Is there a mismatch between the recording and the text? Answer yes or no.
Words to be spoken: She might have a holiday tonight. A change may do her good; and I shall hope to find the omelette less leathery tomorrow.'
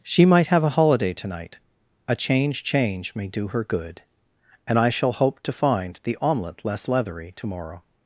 yes